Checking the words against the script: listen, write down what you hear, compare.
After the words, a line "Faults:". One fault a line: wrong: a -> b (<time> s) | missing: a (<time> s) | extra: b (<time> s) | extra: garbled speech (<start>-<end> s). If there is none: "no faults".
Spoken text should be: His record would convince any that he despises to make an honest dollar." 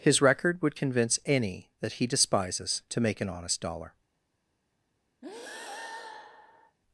His record would convince any that he despises to make an honest dollar."
Faults:
no faults